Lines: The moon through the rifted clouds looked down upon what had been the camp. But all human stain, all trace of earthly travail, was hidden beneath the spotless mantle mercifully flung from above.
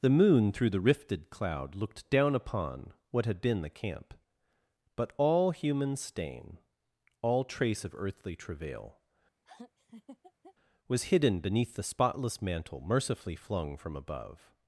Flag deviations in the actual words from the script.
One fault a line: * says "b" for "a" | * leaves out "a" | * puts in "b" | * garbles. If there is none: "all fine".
* says "cloud" for "clouds"